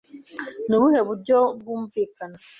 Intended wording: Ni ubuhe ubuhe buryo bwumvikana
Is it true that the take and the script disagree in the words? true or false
true